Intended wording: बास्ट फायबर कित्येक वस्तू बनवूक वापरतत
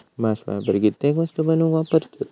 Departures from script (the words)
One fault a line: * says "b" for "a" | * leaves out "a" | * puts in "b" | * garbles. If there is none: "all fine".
all fine